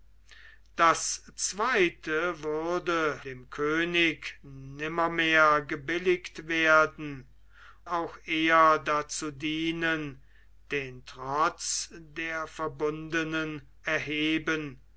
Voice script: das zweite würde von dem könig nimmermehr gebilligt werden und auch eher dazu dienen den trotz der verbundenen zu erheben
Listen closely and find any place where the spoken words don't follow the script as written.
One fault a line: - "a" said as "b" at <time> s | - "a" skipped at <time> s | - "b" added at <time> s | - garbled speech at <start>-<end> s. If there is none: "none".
- "von" skipped at 3.2 s
- "und" skipped at 7.3 s
- "zu" skipped at 13.7 s